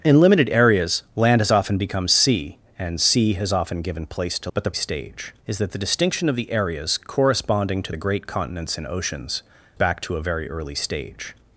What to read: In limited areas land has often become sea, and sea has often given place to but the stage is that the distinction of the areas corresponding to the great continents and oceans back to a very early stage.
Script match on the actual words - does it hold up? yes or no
yes